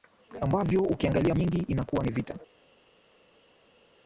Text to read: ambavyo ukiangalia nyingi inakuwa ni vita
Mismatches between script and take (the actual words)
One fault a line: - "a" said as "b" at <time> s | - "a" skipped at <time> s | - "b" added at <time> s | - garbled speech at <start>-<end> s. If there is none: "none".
none